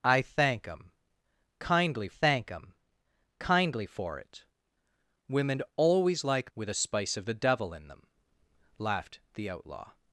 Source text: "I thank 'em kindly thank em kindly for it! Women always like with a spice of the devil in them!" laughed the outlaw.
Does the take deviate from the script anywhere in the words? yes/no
no